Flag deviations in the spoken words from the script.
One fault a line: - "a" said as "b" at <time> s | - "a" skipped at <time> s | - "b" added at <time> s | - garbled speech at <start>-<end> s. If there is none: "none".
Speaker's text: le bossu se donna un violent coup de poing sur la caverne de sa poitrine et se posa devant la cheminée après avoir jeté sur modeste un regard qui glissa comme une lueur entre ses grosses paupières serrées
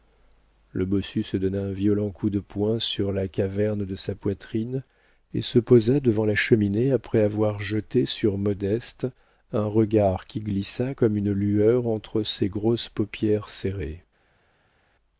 none